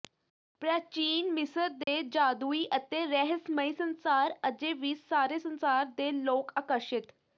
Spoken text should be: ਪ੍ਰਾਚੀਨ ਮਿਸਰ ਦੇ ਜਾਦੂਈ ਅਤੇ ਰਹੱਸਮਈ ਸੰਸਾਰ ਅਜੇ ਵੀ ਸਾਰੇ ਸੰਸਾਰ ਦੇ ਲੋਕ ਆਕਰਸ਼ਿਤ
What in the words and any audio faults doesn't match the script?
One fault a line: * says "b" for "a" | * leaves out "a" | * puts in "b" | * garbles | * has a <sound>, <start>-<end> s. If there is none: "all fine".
* has a dropout, 1.8-1.9 s